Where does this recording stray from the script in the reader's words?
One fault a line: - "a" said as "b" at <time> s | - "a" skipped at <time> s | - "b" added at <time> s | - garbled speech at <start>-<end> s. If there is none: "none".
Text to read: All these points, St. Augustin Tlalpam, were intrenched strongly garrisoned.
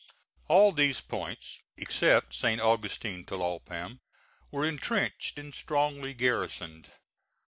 - "except" added at 1.8 s
- "and" added at 5.4 s